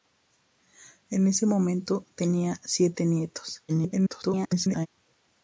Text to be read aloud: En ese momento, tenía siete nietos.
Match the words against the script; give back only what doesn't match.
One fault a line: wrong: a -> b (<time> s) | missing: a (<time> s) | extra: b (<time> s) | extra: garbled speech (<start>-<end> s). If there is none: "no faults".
extra: garbled speech (3.7-4.9 s)